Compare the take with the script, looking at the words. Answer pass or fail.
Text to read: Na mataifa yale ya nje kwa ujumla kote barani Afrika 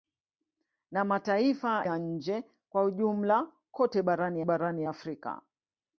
fail